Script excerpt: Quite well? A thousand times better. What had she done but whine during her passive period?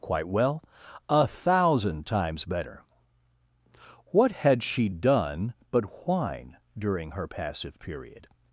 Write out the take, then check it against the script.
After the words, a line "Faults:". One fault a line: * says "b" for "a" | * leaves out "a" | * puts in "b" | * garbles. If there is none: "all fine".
Quite well? A thousand times better. What had she done but whine during her passive period?
Faults:
all fine